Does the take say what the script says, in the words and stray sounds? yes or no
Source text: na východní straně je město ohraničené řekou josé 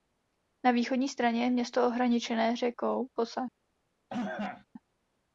no